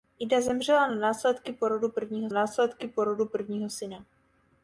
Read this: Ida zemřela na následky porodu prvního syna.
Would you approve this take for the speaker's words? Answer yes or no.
no